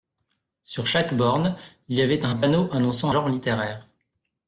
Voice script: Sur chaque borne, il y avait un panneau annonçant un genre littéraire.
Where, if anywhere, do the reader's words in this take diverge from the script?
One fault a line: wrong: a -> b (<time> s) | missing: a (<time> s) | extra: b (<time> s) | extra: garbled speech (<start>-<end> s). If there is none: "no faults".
missing: un (3.1 s)